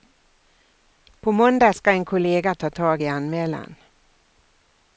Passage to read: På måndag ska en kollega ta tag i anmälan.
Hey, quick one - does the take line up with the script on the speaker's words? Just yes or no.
yes